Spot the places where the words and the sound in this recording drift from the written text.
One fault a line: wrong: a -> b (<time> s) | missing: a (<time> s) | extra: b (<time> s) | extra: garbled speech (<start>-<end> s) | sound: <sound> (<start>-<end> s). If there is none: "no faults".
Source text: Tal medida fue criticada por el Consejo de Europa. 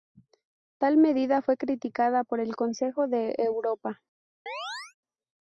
sound: chirp (4.5-4.9 s)